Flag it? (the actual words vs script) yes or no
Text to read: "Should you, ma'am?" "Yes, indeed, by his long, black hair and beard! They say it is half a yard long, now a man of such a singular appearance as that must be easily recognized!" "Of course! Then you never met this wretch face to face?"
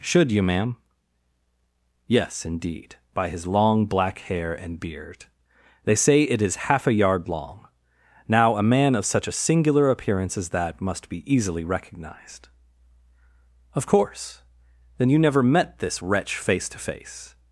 no